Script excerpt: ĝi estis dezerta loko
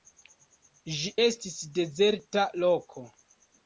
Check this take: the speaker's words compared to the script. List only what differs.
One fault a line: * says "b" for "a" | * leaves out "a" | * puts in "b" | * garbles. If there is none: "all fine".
all fine